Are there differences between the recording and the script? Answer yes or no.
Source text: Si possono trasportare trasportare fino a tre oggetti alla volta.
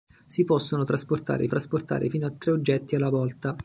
no